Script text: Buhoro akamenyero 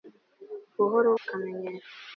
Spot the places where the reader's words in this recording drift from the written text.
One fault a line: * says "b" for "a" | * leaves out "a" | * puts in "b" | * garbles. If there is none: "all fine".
all fine